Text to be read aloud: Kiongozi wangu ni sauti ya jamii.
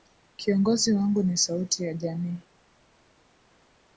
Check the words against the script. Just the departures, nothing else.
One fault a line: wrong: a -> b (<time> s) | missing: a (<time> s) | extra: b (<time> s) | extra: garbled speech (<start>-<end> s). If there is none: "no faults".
no faults